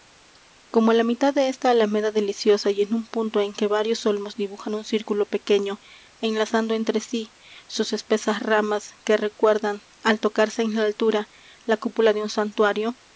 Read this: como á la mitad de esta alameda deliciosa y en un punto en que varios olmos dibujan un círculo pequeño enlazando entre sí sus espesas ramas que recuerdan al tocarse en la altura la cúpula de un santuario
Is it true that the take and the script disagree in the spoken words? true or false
false